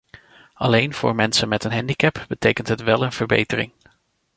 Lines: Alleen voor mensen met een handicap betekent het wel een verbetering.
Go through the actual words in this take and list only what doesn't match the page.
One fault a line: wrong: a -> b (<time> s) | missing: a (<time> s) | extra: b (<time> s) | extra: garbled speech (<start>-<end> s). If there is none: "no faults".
no faults